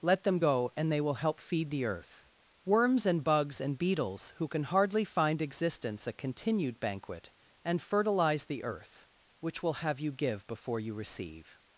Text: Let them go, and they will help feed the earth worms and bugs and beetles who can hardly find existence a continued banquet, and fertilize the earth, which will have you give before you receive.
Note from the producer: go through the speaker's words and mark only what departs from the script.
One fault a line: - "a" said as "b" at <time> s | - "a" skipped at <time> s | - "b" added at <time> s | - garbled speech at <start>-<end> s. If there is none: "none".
none